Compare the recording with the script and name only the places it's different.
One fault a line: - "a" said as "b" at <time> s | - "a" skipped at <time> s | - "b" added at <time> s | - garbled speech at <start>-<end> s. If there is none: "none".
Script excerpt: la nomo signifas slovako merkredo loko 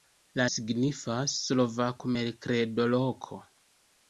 - "nomo" skipped at 0.5 s